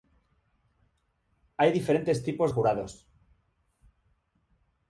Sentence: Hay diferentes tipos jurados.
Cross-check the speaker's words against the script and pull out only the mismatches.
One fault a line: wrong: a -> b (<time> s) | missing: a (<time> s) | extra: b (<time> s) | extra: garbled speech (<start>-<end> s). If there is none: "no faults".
no faults